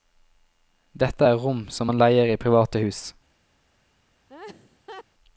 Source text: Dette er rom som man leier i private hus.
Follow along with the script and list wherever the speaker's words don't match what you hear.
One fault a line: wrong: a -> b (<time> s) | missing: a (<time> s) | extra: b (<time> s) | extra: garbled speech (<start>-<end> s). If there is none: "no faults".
no faults